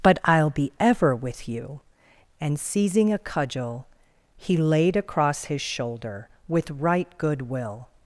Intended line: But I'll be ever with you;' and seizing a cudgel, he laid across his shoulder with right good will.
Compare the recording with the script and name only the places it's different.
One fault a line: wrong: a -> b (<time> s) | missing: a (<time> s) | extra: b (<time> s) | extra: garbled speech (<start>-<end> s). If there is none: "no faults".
no faults